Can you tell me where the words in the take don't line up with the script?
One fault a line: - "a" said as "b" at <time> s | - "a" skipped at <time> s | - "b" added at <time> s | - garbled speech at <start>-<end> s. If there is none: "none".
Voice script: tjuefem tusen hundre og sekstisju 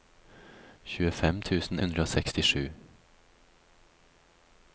none